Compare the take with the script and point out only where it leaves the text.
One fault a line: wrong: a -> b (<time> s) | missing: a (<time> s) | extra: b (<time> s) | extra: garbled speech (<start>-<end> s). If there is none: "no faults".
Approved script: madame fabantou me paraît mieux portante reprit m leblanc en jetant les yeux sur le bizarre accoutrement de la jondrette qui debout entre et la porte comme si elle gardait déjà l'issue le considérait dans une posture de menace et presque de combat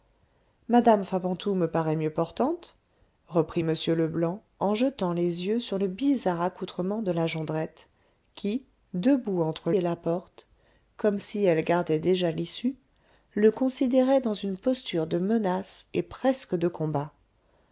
no faults